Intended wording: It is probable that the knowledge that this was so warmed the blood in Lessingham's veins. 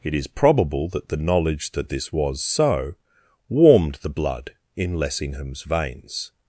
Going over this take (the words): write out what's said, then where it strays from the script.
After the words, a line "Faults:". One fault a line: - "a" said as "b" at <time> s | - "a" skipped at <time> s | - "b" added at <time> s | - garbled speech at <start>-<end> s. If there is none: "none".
It is probable that the knowledge that this was so warmed the blood in Lessingham's veins.
Faults:
none